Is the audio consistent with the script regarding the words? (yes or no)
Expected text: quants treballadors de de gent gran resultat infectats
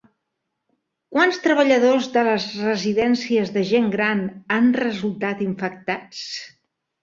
no